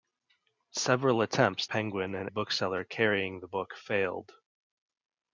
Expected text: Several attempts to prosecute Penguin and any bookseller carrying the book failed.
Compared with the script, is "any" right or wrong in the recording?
wrong